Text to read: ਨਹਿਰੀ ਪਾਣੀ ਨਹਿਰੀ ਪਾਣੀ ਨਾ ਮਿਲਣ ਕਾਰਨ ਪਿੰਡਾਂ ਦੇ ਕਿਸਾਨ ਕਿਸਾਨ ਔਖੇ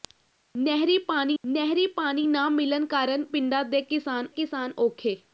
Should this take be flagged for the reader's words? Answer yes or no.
no